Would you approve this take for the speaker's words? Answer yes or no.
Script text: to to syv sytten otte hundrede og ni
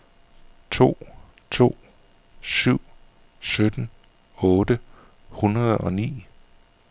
yes